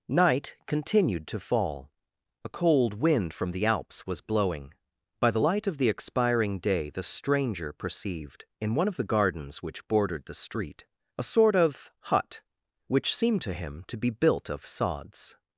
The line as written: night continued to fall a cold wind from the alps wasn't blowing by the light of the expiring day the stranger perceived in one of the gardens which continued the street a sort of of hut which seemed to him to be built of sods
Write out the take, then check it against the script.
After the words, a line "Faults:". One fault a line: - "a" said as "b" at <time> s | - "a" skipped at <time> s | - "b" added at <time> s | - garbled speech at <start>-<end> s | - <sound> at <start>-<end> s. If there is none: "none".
night continued to fall a cold wind from the alps was blowing by the light of the expiring day the stranger perceived in one of the gardens which bordered the street a sort of hut which seemed to him to be built of sods
Faults:
- "wasn't" said as "was" at 4.1 s
- "continued" said as "bordered" at 9.9 s
- "of" skipped at 11.9 s